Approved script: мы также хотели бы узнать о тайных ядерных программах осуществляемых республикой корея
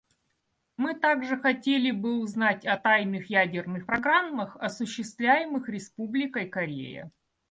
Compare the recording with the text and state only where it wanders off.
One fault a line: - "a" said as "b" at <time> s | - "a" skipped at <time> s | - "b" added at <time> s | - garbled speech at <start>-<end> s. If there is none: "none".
none